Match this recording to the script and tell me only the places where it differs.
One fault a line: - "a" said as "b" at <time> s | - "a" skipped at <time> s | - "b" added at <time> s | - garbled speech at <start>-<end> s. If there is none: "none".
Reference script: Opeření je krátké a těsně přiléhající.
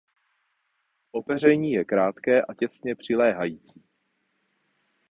none